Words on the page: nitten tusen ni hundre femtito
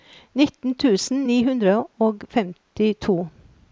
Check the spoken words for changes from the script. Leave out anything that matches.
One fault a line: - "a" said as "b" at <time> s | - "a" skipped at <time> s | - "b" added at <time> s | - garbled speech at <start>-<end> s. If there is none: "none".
- "og" added at 2.1 s